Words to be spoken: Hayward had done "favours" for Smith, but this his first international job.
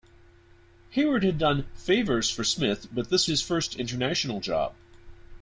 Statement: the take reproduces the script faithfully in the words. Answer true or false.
true